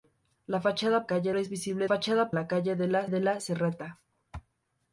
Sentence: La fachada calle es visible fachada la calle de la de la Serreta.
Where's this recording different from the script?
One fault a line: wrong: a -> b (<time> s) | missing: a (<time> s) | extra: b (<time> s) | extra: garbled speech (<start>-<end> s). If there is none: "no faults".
no faults